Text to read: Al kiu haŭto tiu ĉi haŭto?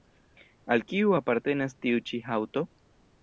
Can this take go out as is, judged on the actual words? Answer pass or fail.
fail